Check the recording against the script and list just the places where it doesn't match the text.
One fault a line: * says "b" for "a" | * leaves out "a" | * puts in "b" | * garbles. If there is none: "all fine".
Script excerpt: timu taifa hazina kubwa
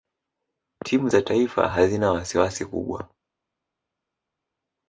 * puts in "za"
* puts in "wasiwasi"